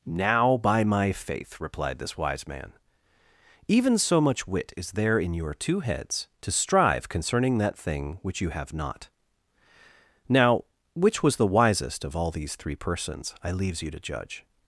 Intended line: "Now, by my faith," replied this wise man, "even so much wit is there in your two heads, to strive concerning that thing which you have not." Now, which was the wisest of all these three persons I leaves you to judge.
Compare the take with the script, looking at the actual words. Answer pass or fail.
pass